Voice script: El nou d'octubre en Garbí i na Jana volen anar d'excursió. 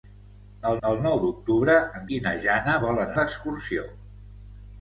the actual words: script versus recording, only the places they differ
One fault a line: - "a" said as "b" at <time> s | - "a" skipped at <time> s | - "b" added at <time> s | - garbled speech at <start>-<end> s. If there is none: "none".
- "el" added at 0.9 s
- "Garbí" skipped at 2.0 s
- "anar" skipped at 3.1 s